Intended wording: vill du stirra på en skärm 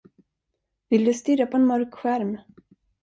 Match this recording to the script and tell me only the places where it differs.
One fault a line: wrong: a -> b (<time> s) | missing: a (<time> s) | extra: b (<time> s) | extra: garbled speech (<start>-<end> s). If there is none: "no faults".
extra: mörk (1.7 s)